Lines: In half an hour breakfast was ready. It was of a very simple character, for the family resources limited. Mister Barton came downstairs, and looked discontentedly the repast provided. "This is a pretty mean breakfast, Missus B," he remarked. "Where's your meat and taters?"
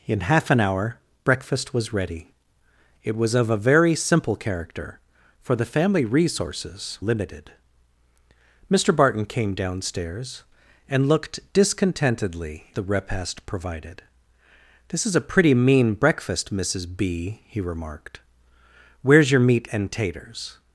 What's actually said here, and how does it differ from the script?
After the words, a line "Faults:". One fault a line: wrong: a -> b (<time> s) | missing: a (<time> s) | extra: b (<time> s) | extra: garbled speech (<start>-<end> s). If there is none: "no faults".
In half an hour breakfast was ready. It was of a very simple character, for the family resources limited. Mister Barton came downstairs, and looked discontentedly the repast provided. "This is a pretty mean breakfast, Missus B," he remarked. "Where's your meat and taters?"
Faults:
no faults